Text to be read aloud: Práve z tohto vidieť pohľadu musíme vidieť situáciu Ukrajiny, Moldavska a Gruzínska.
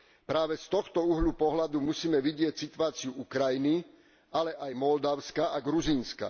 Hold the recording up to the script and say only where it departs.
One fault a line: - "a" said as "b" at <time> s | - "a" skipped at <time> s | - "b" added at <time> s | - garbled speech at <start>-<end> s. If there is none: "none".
- "vidieť" said as "uhla" at 1.0 s
- "ale aj" added at 4.3 s